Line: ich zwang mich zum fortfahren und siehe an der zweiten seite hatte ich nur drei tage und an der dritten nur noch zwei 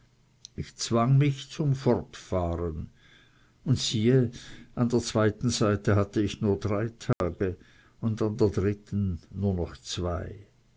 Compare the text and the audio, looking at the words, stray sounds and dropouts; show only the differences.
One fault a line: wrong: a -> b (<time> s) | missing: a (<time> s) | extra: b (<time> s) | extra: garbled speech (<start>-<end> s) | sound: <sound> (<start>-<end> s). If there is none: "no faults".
sound: dropout (7.1-7.2 s)